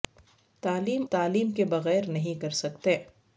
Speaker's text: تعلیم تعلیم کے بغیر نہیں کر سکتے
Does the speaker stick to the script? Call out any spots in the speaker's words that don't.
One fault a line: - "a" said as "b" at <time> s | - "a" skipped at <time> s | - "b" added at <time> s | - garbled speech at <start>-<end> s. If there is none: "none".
none